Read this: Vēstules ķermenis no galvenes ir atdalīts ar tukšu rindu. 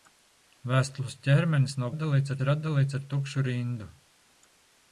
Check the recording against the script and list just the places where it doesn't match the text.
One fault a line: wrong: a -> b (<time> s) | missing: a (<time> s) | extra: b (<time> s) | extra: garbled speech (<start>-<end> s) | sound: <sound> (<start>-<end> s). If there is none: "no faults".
wrong: galvenes -> atdalīts (1.9 s)